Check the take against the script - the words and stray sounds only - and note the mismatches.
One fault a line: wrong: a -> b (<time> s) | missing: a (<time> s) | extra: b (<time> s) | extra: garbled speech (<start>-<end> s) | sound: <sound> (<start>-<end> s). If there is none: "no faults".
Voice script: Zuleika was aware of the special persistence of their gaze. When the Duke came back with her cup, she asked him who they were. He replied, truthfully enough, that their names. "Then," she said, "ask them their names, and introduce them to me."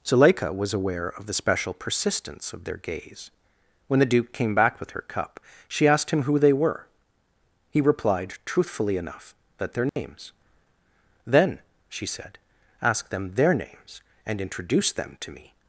sound: dropout (9.9-10.0 s)